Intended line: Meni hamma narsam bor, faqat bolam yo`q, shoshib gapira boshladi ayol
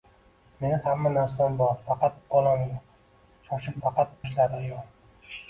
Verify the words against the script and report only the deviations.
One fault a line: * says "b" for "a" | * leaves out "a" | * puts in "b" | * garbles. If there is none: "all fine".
* says "faqat" for "gapira"